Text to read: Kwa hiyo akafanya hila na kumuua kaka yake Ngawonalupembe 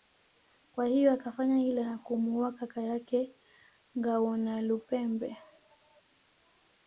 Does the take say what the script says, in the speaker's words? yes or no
yes